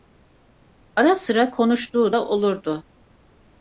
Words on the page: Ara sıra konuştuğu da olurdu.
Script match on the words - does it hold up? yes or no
yes